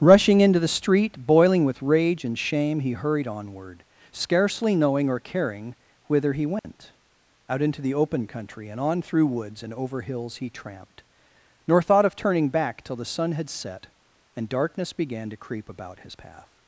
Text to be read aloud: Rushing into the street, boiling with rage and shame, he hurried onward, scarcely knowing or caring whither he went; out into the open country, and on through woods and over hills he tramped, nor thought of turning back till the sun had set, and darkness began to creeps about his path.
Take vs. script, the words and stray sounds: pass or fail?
fail